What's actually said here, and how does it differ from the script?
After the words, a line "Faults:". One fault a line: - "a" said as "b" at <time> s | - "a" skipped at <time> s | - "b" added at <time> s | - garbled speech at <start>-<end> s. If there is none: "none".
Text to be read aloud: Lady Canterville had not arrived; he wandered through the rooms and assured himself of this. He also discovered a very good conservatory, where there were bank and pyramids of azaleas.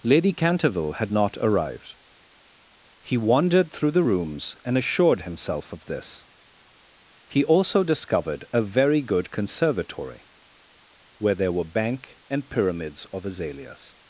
Lady Canterville had not arrived; he wandered through the rooms and assured himself of this. He also discovered a very good conservatory, where there were bank and pyramids of azaleas.
Faults:
none